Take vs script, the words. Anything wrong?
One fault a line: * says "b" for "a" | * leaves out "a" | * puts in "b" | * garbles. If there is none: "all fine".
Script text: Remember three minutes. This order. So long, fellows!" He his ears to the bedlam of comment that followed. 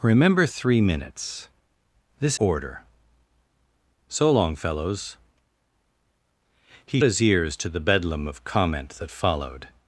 all fine